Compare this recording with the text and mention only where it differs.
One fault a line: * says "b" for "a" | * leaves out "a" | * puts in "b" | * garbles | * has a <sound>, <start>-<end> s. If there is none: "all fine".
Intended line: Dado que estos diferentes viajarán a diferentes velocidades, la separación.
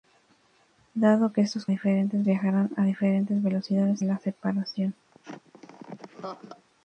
* has a laugh, 5.1-6.7 s